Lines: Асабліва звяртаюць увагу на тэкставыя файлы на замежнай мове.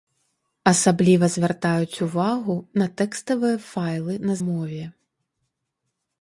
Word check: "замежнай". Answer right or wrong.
wrong